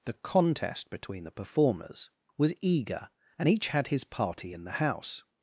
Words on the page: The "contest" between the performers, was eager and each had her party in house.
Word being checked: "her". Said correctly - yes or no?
no